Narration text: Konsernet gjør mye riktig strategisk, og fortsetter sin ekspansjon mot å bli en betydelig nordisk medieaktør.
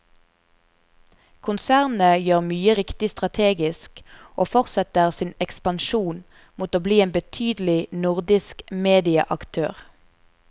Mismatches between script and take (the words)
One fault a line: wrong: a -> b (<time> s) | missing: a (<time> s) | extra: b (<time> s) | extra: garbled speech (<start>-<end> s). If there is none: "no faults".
no faults